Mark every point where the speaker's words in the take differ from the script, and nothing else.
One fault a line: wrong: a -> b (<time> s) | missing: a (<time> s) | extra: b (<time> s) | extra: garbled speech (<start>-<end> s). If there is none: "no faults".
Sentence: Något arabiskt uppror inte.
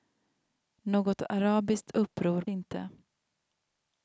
no faults